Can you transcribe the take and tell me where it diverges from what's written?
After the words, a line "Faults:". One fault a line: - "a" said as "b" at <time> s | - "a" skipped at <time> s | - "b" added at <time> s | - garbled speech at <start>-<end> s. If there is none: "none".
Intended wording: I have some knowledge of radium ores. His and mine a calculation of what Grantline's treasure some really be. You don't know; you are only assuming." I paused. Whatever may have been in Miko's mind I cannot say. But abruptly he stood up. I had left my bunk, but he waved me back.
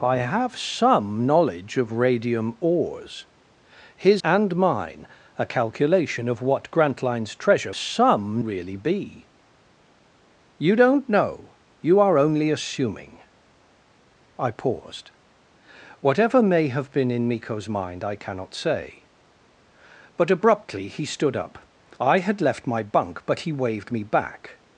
I have some knowledge of radium ores. His and mine a calculation of what Grantline's treasure some really be. You don't know; you are only assuming." I paused. Whatever may have been in Miko's mind I cannot say. But abruptly he stood up. I had left my bunk, but he waved me back.
Faults:
none